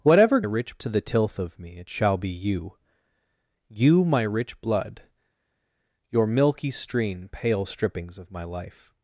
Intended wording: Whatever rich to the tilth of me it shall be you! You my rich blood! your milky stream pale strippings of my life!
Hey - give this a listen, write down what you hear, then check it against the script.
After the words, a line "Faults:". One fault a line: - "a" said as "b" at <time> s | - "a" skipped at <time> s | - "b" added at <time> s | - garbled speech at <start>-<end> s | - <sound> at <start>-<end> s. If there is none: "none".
Whatever rich to the tilth of me it shall be you! You my rich blood! your milky stream pale strippings of my life!
Faults:
none